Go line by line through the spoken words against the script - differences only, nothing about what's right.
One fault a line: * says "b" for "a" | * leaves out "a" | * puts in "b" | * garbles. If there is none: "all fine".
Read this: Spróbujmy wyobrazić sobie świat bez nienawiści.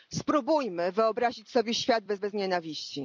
* puts in "bez"